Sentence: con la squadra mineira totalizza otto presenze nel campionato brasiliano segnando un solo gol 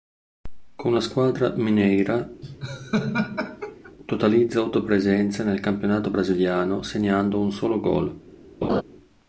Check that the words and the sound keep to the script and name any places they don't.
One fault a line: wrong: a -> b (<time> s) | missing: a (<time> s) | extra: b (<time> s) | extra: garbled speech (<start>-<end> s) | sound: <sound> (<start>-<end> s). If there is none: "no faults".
sound: laugh (2.4-3.9 s)
sound: laugh (8.6-8.8 s)